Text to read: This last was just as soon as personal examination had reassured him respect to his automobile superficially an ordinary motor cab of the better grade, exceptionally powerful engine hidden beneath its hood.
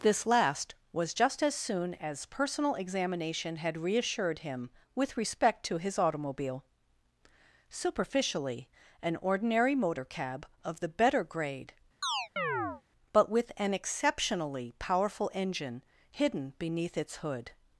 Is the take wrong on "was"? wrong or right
right